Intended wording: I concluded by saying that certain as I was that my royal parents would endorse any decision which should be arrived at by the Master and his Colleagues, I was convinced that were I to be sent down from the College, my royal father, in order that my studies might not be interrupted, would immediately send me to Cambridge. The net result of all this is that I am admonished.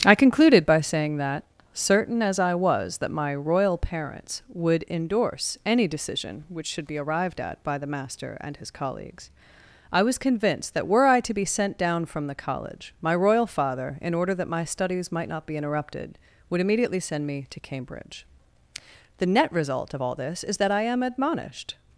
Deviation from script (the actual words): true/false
false